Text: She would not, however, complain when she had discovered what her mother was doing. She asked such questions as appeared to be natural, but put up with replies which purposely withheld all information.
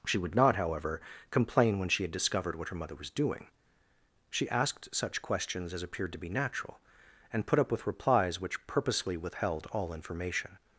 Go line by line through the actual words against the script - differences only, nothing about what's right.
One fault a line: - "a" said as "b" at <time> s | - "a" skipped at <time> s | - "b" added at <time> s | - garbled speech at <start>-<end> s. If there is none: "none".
- "but" said as "and" at 7.3 s